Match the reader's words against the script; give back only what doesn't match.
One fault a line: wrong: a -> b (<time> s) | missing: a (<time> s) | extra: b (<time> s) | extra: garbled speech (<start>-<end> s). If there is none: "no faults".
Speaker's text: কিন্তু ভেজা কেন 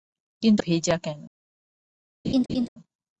no faults